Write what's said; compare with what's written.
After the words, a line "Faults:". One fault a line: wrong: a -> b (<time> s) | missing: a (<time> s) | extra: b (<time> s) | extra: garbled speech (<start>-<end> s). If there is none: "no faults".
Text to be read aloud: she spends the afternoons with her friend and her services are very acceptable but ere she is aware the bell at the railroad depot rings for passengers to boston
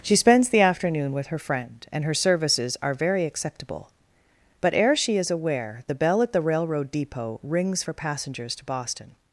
she spends the afternoon with her friend and her services are very acceptable but ere she is aware the bell at the railroad depot rings for passengers to boston
Faults:
wrong: afternoons -> afternoon (0.6 s)